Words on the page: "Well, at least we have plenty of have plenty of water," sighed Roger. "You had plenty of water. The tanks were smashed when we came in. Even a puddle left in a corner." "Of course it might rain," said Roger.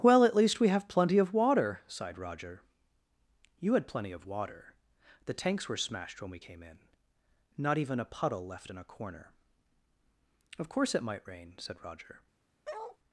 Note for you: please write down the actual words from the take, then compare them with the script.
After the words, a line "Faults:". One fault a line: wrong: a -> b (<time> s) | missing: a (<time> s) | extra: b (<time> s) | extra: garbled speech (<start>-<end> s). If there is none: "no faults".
"Well, at least we have plenty of water," sighed Roger. "You had plenty of water. The tanks were smashed when we came in. Not even a puddle left in a corner." "Of course it might rain," said Roger.
Faults:
missing: have plenty of (1.3 s)
extra: Not (7.6 s)